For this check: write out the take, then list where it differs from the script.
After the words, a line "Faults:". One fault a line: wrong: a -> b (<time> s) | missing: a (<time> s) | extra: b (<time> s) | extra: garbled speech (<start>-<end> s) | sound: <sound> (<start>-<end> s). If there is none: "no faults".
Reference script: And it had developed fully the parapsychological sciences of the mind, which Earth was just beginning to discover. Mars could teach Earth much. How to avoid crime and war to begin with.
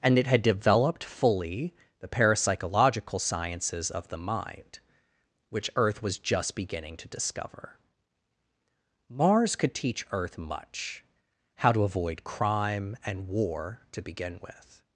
And it had developed fully the parapsychological sciences of the mind, which Earth was just beginning to discover. Mars could teach Earth much. How to avoid crime and war to begin with.
Faults:
no faults